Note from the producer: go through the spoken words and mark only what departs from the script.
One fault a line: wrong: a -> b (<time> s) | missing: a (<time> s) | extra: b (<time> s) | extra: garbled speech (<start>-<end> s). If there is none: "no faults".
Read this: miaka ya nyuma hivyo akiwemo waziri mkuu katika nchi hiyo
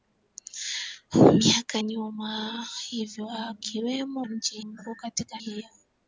missing: ya (1.8 s)
wrong: waziri -> nchi (4.2 s)
missing: nchi (5.4 s)